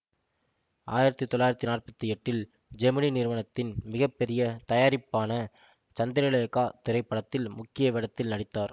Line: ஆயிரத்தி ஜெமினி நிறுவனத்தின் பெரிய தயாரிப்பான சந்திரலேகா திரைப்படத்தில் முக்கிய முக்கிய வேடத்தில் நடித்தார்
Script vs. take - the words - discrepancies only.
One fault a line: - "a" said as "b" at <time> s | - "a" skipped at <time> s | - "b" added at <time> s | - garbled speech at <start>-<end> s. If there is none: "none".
- "தொள்ளாயிரத்தி நாற்பத்தி எட்டில்" added at 1.2 s
- "மிக" added at 3.8 s
- "முக்கிய" skipped at 7.9 s